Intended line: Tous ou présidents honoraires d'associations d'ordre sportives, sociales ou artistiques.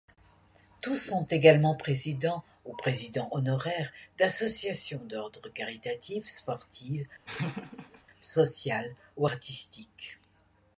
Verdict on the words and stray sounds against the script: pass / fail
fail